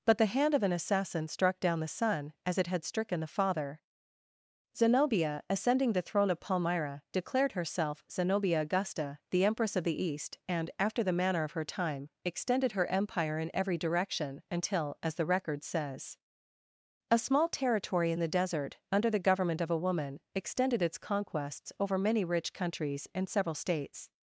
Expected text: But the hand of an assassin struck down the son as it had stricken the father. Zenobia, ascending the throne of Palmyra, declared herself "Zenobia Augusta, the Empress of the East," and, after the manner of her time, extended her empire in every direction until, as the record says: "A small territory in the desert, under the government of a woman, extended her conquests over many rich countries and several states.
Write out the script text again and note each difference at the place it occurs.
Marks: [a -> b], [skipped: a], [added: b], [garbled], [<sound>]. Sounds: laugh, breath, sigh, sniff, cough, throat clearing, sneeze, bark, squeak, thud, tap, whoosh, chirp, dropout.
But the hand of an assassin struck down the son as it had stricken the father. Zenobia, ascending the throne of Palmyra, declared herself "Zenobia Augusta, the Empress of the East," and, after the manner of her time, extended her empire in every direction until, as the record says: "A small territory in the desert, under the government of a woman, extended [her -> its] conquests over many rich countries and several states.